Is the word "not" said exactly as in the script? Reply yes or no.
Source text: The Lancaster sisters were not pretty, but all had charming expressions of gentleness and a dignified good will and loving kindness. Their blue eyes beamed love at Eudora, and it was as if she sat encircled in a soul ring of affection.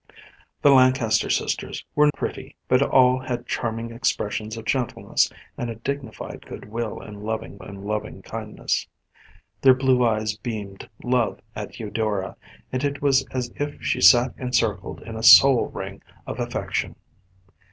no